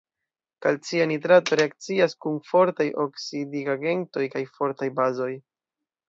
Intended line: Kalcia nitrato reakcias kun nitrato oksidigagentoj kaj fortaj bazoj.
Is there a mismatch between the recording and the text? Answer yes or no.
yes